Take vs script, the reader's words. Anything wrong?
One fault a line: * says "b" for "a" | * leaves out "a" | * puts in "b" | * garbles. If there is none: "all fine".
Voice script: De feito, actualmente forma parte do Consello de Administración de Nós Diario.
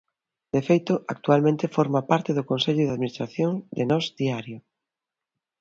all fine